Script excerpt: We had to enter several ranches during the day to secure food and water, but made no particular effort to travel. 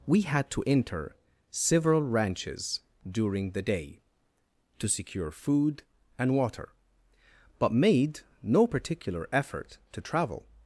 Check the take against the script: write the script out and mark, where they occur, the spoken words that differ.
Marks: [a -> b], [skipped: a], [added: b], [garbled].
We had to enter several ranches during the day to secure food and water, but made no particular effort to travel.